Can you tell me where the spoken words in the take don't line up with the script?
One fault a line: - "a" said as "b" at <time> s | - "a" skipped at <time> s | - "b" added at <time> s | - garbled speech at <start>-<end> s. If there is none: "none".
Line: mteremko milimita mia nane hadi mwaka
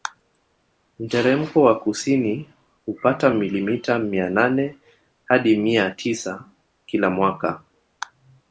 - "wa kusini hupata" added at 1.6 s
- "mia tisa kila" added at 5.6 s